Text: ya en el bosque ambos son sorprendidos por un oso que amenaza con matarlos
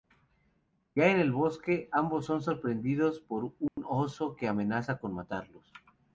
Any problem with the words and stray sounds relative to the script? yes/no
yes